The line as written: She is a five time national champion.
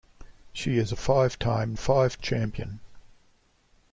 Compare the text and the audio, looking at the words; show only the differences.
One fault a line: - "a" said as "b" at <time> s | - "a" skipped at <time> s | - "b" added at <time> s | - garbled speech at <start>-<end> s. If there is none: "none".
- "national" said as "five" at 1.8 s